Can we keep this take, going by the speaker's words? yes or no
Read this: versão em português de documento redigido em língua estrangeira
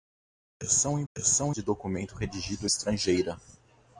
no